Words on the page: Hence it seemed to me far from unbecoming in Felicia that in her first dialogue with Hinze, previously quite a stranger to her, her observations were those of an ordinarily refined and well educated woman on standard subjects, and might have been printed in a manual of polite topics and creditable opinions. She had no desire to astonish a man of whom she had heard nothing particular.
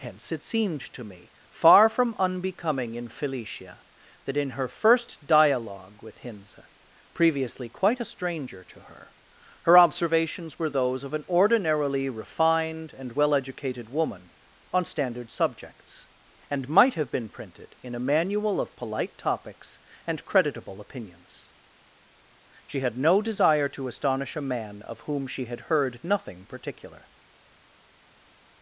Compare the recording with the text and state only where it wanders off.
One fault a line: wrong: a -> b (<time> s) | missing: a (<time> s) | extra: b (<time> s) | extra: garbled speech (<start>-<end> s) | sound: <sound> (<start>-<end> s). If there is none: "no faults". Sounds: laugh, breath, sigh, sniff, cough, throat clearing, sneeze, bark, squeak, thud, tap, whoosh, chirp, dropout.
no faults